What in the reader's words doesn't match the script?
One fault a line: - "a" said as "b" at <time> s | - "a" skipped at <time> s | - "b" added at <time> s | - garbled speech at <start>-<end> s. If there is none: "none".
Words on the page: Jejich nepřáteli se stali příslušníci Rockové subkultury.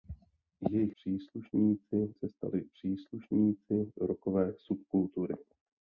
- "nepřáteli" said as "příslušníci" at 0.9 s